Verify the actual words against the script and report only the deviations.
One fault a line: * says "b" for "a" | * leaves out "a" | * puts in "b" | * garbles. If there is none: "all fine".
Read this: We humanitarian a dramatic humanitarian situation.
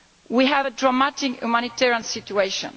* says "have" for "humanitarian"